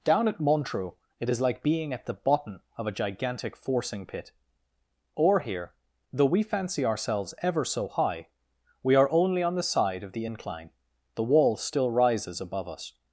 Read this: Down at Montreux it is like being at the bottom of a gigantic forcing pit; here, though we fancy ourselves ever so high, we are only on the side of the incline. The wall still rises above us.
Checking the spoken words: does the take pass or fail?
fail